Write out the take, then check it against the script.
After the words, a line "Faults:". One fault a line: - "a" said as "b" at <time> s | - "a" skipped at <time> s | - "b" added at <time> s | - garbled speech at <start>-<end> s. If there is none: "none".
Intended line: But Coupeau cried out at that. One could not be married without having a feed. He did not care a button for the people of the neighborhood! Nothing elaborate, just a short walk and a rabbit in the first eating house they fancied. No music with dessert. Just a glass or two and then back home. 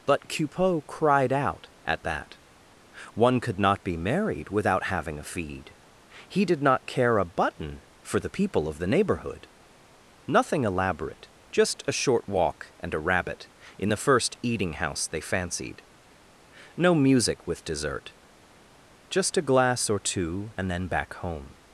But Coupeau cried out at that. One could not be married without having a feed. He did not care a button for the people of the neighborhood! Nothing elaborate, just a short walk and a rabbit in the first eating house they fancied. No music with dessert. Just a glass or two and then back home.
Faults:
none